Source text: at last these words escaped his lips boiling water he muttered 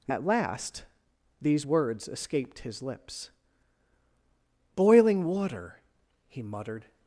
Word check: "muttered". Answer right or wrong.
right